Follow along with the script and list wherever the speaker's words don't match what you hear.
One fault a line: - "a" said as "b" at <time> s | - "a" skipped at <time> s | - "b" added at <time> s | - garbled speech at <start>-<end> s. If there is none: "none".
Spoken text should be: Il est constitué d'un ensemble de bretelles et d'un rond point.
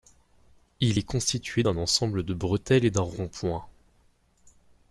none